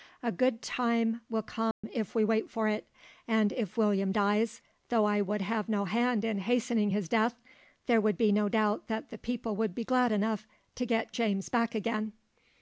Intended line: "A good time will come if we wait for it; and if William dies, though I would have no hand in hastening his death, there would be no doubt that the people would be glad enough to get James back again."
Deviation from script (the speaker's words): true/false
false